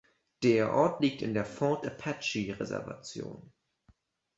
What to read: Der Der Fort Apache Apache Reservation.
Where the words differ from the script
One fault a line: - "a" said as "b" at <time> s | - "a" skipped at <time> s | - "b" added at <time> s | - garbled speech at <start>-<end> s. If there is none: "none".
- "Ort liegt in" added at 0.7 s
- "Apache" skipped at 2.6 s